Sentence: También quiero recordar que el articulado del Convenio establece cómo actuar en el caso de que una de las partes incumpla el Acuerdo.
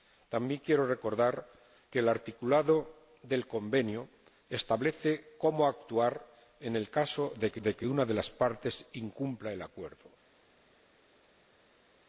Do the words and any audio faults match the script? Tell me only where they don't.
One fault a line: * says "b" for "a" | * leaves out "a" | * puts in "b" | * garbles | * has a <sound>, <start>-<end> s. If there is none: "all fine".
* puts in "de que"